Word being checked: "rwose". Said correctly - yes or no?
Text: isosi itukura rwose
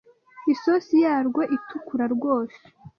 yes